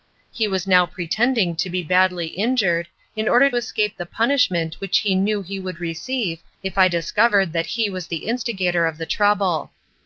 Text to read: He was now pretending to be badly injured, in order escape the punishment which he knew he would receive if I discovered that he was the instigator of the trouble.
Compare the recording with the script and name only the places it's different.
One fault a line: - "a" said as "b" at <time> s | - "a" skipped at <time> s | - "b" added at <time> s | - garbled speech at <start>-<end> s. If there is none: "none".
none